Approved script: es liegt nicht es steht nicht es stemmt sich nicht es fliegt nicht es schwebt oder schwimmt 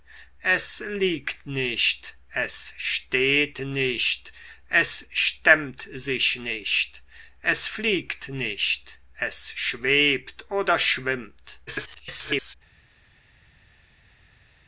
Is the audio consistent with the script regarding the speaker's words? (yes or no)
no